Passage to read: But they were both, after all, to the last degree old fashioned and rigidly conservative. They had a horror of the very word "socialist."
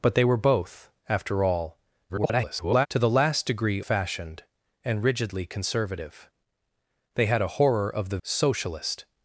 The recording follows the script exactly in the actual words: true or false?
false